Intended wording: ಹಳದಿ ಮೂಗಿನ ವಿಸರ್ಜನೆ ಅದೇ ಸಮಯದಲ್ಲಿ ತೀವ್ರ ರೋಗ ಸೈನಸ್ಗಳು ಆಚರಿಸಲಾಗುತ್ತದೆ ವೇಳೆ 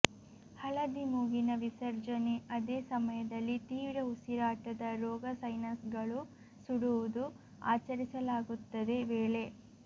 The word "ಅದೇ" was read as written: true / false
true